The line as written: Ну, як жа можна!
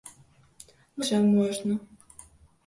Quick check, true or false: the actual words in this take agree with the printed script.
false